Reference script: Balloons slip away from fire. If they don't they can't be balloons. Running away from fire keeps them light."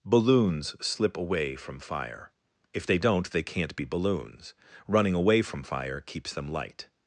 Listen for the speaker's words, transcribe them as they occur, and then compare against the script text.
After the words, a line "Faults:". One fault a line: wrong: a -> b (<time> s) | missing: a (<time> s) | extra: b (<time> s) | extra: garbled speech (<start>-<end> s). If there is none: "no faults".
Balloons slip away from fire. If they don't they can't be balloons. Running away from fire keeps them light."
Faults:
no faults